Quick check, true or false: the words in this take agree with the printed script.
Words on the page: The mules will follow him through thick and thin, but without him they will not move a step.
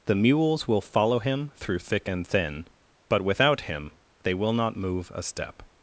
true